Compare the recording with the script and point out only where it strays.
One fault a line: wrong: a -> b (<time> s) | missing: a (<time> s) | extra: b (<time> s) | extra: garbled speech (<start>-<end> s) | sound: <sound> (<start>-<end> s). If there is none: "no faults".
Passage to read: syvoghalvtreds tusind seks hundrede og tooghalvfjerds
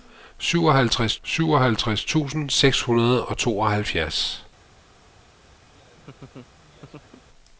extra: syvoghalvtreds (1.2 s)
sound: laugh (5.7-7.3 s)